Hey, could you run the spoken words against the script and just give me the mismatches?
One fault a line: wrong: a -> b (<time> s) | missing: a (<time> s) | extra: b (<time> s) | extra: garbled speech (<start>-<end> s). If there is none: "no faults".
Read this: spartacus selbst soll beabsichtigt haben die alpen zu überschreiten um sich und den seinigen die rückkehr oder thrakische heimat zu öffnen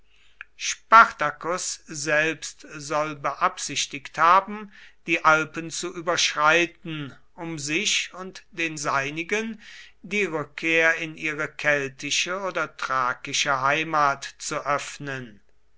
extra: in ihre keltische (11.0 s)